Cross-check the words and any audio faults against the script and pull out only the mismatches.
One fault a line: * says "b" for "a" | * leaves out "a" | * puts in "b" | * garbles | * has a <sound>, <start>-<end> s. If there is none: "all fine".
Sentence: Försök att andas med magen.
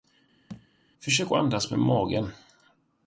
* has a thud, 0.5-0.7 s